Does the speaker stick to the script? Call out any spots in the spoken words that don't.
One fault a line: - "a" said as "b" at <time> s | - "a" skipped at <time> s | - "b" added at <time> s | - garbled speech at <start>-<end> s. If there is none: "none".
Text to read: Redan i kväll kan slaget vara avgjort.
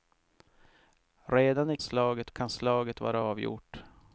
- "kväll" said as "slaget" at 1.8 s